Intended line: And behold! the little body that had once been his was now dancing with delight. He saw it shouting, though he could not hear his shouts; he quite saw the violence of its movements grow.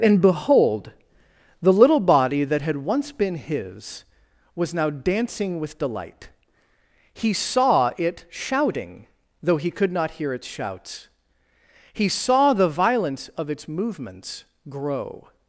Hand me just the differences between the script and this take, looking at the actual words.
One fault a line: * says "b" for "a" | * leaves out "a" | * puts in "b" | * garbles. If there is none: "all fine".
* says "its" for "his"
* leaves out "quite"